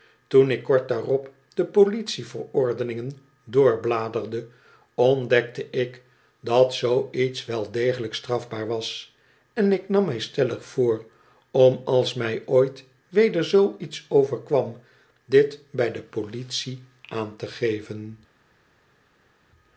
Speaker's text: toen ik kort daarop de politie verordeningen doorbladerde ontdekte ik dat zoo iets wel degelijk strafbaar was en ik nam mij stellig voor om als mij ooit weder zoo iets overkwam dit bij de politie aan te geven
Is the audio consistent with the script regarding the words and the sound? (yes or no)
yes